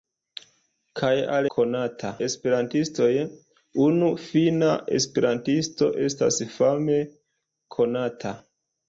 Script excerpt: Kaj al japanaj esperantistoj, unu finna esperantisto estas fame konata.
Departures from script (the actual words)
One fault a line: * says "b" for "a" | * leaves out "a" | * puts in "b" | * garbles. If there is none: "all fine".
* says "konata" for "japanaj"